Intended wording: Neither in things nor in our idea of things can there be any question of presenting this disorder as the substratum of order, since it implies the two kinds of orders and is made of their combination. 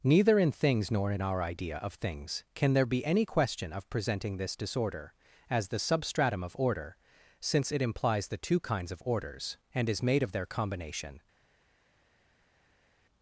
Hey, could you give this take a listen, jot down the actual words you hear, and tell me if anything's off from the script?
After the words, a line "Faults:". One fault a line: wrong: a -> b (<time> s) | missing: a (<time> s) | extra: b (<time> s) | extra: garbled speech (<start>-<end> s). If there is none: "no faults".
Neither in things nor in our idea of things can there be any question of presenting this disorder as the substratum of order, since it implies the two kinds of orders and is made of their combination.
Faults:
no faults